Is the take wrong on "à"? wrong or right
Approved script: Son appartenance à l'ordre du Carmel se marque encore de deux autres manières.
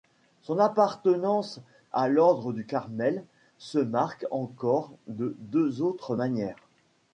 right